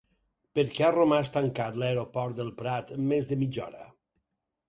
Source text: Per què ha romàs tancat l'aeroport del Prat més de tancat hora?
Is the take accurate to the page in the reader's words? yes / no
no